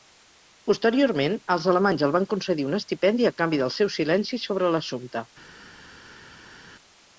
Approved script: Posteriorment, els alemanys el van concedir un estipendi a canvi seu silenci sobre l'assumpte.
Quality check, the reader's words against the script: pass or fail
fail